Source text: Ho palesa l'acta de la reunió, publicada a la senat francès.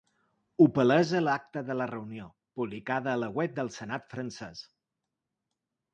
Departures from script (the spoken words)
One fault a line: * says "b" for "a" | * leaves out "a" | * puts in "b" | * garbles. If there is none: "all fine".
* puts in "web del"